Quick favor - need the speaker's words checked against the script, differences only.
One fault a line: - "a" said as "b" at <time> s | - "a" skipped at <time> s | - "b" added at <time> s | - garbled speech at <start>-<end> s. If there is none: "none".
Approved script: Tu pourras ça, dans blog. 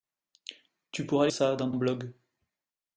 none